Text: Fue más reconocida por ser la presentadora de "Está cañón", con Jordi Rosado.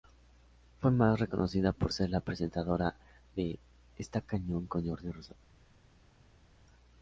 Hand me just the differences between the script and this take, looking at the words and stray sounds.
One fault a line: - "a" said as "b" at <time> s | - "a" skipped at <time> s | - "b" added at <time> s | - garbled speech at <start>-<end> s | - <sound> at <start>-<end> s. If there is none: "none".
none